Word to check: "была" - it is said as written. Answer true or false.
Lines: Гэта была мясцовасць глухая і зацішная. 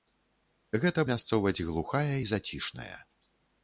false